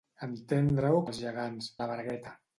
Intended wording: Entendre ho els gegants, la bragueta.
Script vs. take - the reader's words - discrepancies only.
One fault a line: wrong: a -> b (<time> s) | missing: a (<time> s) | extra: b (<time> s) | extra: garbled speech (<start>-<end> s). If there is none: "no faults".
no faults